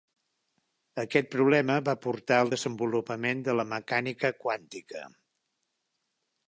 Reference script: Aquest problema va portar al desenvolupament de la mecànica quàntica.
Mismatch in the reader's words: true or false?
false